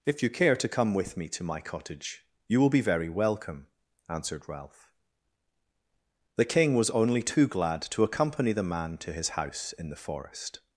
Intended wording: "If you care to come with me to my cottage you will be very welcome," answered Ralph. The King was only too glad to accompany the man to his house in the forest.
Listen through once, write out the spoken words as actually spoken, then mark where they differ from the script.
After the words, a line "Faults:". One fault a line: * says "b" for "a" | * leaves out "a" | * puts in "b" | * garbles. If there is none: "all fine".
"If you care to come with me to my cottage you will be very welcome," answered Ralph. The King was only too glad to accompany the man to his house in the forest.
Faults:
all fine